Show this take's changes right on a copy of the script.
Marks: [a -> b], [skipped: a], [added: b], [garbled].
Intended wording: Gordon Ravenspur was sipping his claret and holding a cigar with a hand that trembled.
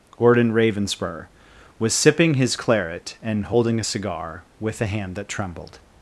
Gordon Ravenspur was sipping his claret and holding a cigar with a hand that trembled.